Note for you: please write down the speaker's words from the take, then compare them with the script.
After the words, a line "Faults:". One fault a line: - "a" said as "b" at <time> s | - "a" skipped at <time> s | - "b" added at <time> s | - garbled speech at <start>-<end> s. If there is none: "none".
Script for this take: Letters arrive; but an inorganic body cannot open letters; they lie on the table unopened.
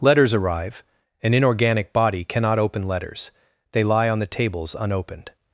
Letters arrive; an inorganic body cannot open letters; they lie on the tables unopened.
Faults:
- "but" skipped at 0.8 s
- "table" said as "tables" at 4.3 s